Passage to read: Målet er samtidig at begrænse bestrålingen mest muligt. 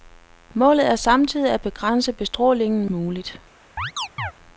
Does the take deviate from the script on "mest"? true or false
true